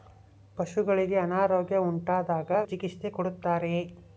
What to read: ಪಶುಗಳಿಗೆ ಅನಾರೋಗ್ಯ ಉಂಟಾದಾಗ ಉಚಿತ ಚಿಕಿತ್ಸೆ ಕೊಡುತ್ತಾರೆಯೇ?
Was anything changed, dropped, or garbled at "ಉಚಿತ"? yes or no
yes